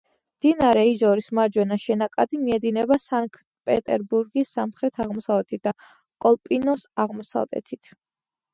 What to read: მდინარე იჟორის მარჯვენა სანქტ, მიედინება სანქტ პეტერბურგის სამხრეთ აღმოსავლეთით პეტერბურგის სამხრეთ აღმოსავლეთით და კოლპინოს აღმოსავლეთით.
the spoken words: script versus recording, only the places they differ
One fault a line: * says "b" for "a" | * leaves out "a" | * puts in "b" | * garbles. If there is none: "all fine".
* says "შენაკადი" for "სანქტ"
* leaves out "პეტერბურგის სამხრეთ აღმოსავლეთით"